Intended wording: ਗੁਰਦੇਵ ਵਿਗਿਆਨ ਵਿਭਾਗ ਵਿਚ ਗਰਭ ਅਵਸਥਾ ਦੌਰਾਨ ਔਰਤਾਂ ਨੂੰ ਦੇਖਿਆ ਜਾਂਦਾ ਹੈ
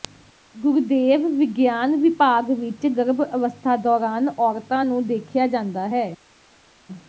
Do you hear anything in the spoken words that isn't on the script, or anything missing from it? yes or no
no